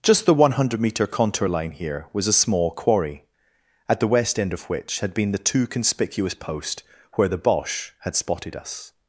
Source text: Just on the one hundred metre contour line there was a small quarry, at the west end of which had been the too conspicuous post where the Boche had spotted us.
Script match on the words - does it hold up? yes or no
no